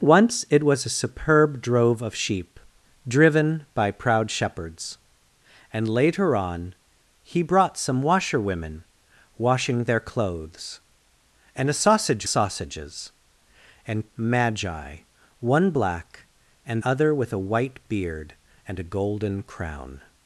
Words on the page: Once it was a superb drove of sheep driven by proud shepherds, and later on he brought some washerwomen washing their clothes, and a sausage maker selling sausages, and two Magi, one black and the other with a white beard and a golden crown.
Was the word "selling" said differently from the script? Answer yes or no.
yes